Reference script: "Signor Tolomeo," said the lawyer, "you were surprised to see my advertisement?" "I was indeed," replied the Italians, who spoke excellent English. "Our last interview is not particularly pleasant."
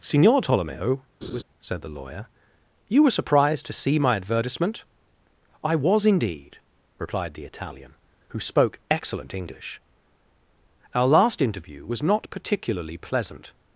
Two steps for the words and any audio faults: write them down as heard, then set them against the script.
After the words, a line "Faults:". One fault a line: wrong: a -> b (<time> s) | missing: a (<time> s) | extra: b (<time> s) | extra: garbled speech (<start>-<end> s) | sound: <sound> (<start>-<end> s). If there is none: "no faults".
"Signor Tolomeo," said the lawyer, "you were surprised to see my advertisement?" "I was indeed," replied the Italian, who spoke excellent English. "Our last interview was not particularly pleasant."
Faults:
sound: laugh (1.2-1.4 s)
wrong: Italians -> Italian (7.4 s)
wrong: is -> was (11.9 s)